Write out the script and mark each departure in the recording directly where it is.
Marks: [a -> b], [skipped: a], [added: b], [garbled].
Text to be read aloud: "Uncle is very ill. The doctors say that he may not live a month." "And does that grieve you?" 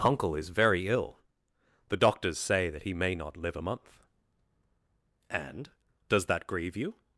"Uncle is very ill. The doctors say that he may not live a month." "And does that grieve you?"